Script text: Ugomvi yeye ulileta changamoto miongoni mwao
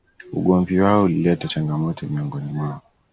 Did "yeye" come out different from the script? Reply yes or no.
yes